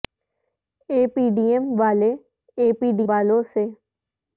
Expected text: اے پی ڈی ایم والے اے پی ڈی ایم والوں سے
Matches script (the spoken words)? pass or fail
fail